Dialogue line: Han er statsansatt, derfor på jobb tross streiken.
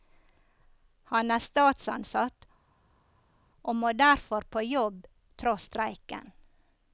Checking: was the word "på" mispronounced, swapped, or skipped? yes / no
no